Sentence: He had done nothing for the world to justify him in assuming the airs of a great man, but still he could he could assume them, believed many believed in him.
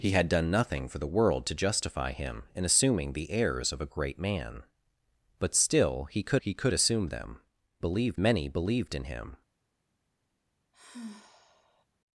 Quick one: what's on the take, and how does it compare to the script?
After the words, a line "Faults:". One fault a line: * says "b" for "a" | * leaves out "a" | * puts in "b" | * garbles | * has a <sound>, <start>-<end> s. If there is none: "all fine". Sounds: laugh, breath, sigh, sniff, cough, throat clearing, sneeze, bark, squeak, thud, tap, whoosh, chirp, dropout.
He had done nothing for the world to justify him in assuming the airs of a great man, but still he could he could assume them, believed many believed in him.
Faults:
* has a sigh, 10.7-11.9 s